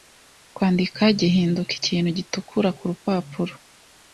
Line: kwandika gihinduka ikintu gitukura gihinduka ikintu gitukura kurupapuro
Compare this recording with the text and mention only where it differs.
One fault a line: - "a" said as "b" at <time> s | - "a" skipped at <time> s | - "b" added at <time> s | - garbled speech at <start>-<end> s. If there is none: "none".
- "gihinduka ikintu gitukura" skipped at 2.7 s